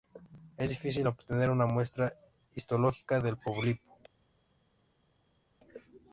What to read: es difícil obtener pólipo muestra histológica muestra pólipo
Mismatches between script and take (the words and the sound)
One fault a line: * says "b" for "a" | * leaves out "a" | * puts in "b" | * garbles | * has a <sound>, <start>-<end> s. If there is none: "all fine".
* says "una" for "pólipo"
* says "del" for "muestra"